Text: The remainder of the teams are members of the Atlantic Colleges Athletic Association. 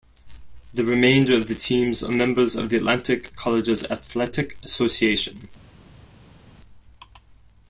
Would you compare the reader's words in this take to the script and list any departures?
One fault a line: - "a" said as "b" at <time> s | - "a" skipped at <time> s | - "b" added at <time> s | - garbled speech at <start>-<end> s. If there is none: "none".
none